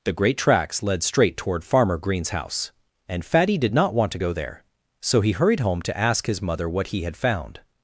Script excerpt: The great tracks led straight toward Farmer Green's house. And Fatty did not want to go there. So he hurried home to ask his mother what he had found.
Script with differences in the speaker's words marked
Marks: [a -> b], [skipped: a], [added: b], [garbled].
The great tracks led straight toward Farmer Green's house. And Fatty did not want to go there. So he hurried home to ask his mother what he had found.